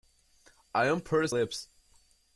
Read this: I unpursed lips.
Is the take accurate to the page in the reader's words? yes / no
yes